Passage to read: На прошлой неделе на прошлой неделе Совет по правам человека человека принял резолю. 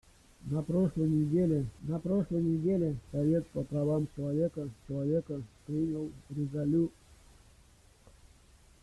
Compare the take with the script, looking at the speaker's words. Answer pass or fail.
pass